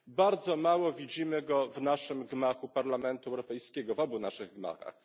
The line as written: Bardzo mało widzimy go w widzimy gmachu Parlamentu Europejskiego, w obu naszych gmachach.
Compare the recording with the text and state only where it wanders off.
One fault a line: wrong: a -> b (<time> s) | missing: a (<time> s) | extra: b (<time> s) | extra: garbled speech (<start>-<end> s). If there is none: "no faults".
wrong: widzimy -> naszym (1.8 s)